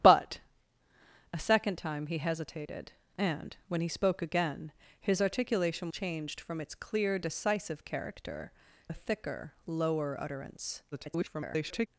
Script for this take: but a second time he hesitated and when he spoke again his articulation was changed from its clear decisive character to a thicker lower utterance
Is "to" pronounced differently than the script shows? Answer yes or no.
yes